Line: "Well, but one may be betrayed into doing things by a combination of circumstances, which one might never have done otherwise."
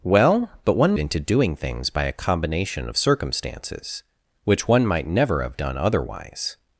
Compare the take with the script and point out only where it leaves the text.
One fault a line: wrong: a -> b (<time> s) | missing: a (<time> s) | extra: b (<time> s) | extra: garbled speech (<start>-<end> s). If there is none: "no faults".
missing: may be betrayed (0.9 s)